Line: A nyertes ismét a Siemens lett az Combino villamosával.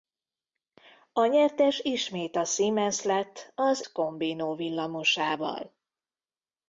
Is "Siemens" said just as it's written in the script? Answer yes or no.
yes